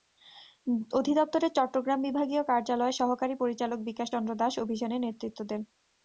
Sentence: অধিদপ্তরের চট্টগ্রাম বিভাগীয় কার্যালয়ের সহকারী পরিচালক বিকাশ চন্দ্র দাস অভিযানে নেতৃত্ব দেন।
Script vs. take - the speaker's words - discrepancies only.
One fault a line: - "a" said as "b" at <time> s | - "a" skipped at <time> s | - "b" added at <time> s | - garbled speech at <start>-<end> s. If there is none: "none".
none